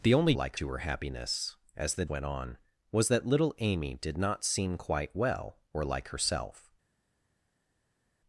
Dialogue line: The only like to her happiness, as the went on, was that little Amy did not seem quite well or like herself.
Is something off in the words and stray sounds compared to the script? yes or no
no